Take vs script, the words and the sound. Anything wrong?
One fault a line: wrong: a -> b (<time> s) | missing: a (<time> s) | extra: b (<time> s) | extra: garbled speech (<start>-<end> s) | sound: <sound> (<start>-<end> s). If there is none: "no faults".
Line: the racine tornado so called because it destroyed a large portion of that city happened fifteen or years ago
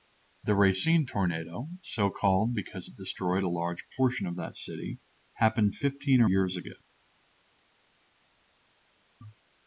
no faults